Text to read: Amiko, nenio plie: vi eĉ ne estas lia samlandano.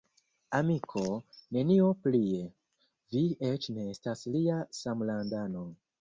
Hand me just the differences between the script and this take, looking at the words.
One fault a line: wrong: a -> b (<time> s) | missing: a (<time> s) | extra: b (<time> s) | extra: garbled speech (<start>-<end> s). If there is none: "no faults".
no faults